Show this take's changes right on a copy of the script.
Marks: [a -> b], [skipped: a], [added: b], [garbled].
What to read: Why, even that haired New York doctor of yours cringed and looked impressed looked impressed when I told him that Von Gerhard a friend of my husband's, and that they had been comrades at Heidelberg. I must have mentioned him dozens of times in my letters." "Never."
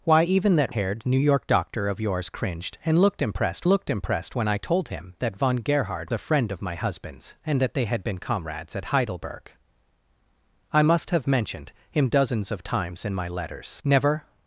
Why, even that haired New York doctor of yours cringed and looked impressed looked impressed when I told him that Von Gerhard a friend of my husband's, and that they had been comrades at Heidelberg. I must have mentioned him dozens of times in my letters." "Never."